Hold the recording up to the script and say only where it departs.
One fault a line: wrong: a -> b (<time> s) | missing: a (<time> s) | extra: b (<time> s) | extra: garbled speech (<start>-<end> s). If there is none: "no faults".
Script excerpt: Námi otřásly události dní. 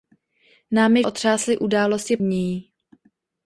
no faults